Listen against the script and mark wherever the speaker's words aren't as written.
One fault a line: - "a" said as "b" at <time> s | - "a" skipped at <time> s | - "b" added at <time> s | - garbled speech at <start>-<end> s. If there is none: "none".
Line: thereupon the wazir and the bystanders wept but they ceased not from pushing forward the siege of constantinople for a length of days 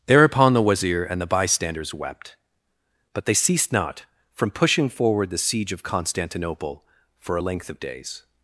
none